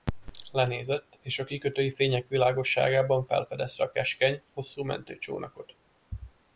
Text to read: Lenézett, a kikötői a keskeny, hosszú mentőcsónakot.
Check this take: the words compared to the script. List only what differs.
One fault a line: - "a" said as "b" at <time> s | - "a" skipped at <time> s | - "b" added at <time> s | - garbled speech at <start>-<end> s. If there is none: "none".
- "és" added at 1.2 s
- "fények világosságában felfedezte" added at 1.9 s